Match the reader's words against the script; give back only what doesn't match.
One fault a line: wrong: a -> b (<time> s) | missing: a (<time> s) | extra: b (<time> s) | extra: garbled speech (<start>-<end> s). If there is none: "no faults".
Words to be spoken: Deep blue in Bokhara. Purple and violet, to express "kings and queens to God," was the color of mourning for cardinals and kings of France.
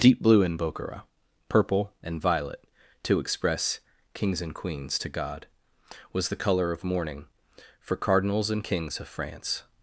no faults